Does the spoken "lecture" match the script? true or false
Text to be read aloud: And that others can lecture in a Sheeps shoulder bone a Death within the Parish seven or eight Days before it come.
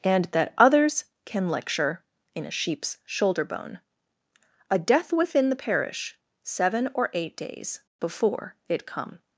true